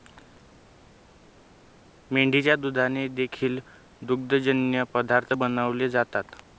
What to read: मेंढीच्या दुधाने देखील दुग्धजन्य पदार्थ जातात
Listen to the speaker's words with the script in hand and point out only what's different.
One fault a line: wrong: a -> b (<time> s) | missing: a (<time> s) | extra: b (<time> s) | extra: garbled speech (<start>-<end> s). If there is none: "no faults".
extra: बनवले (5.3 s)